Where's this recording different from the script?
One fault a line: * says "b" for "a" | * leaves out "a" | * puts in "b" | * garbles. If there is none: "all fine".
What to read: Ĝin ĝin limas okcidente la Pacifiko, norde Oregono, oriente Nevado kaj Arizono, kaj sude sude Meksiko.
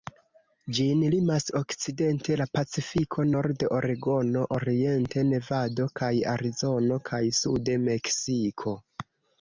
* leaves out "ĝin"
* leaves out "sude"